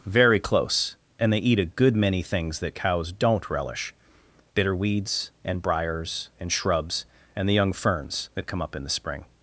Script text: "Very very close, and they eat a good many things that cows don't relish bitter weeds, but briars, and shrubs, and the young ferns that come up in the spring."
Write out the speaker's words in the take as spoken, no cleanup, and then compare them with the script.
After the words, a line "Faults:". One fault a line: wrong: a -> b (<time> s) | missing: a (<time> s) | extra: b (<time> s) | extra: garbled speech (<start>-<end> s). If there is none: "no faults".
"Very close, and they eat a good many things that cows don't relish bitter weeds, and briars, and shrubs, and the young ferns that come up in the spring."
Faults:
missing: very (0.4 s)
wrong: but -> and (5.5 s)